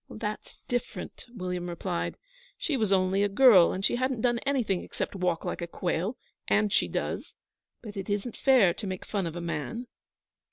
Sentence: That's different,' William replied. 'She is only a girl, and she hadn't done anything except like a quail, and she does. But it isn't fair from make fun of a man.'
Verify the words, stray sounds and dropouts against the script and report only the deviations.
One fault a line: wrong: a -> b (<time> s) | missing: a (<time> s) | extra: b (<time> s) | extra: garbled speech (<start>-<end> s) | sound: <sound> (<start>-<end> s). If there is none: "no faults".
wrong: is -> was (2.8 s)
extra: walk (5.1 s)
wrong: from -> to (8.7 s)